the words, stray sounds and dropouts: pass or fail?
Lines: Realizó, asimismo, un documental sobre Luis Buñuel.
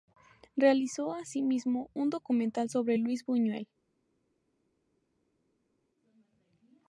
pass